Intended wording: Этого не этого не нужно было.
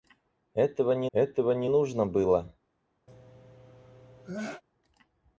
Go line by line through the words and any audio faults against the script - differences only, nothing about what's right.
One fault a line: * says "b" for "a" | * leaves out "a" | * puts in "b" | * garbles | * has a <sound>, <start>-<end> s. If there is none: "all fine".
* has a sneeze, 3.1-4.6 s